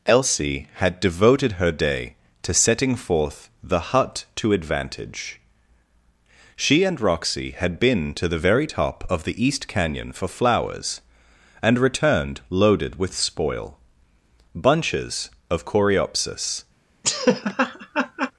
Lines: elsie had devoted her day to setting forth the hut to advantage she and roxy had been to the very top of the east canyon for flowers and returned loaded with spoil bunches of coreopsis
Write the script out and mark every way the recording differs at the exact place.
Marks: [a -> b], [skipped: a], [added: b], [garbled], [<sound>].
elsie had devoted her day to setting forth the hut to advantage she and roxy had been to the very top of the east canyon for flowers and returned loaded with spoil bunches of coreopsis [laugh]